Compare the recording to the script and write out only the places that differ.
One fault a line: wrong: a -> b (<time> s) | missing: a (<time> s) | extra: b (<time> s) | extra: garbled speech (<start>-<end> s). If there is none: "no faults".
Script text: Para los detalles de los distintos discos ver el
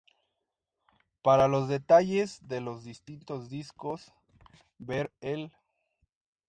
no faults